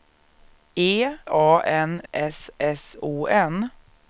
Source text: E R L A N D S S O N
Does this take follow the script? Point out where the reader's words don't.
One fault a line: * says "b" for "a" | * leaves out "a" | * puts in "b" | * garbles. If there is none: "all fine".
* leaves out "R L"
* leaves out "D"